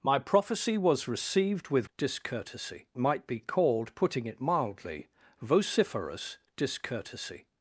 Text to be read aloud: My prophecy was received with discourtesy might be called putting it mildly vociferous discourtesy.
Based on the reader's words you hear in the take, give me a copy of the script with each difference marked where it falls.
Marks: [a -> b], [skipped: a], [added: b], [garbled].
My prophecy was received with discourtesy might be called putting it mildly vociferous discourtesy.